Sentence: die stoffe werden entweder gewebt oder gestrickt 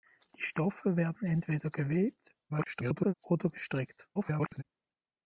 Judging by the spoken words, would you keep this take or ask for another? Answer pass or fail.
fail